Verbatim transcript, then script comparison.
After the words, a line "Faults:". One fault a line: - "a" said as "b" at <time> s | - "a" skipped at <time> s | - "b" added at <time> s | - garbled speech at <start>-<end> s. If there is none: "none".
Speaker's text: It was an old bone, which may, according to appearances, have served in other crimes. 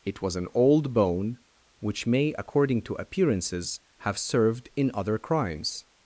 It was an old bone, which may, according to appearances, have served in other crimes.
Faults:
none